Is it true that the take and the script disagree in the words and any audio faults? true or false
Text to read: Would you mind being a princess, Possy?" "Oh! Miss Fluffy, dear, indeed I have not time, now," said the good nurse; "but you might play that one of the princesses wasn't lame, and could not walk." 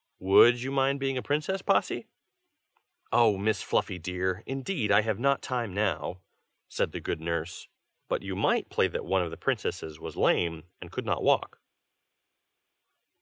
true